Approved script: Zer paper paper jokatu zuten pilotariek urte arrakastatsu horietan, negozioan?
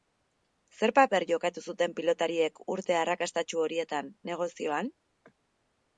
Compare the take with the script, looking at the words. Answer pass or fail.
fail